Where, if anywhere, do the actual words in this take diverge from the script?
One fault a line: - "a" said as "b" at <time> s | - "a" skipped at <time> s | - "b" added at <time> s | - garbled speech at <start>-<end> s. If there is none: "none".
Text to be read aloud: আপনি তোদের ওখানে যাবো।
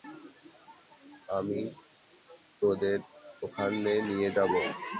- "আপনি" said as "আমি" at 1.4 s
- "নিয়ে" added at 4.1 s